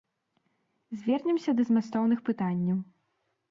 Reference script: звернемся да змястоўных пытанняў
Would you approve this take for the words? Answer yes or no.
yes